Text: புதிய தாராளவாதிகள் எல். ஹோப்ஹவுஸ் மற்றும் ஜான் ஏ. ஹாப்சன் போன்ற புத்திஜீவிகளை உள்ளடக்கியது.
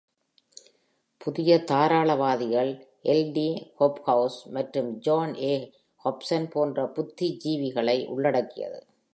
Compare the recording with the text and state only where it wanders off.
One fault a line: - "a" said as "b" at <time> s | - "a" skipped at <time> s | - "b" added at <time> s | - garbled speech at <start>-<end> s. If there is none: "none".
- "டி" added at 3.3 s